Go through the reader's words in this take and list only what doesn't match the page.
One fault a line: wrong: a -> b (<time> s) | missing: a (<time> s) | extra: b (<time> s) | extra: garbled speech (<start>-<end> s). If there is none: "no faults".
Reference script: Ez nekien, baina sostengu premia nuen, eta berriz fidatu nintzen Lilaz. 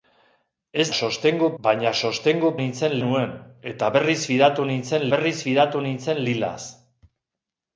wrong: nekien -> sostengu (1.0 s)
wrong: premia -> nintzen (2.6 s)
extra: berriz fidatu nintzen (5.2 s)